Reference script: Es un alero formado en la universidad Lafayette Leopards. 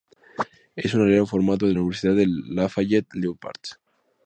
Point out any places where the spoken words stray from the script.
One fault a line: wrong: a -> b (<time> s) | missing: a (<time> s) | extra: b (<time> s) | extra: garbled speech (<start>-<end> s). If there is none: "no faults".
extra: de (2.1 s)